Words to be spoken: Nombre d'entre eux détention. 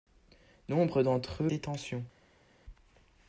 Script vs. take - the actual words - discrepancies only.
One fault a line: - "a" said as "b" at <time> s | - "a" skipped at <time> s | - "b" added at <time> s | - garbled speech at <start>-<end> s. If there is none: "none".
none